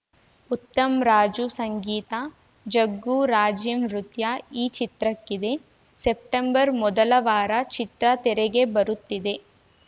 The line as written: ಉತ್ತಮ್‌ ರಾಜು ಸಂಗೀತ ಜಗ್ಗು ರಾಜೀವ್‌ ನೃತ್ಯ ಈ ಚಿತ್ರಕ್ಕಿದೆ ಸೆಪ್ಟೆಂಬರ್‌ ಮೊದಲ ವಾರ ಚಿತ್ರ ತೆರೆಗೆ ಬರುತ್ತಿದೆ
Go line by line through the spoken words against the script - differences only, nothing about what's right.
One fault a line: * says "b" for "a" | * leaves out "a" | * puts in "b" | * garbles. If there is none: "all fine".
all fine